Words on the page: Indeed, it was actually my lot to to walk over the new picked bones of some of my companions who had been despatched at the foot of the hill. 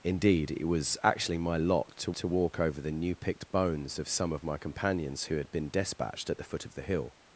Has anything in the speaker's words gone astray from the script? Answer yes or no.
no